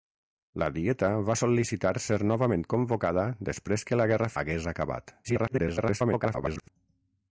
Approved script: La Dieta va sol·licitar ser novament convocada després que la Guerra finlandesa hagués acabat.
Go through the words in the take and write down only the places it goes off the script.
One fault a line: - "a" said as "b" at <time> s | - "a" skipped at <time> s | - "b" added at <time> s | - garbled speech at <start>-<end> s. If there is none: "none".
- "finlandesa" skipped at 4.3 s
- garbled speech at 5.2-6.7 s